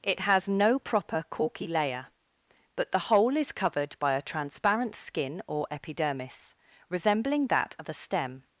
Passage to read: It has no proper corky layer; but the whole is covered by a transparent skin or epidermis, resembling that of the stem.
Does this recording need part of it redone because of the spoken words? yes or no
yes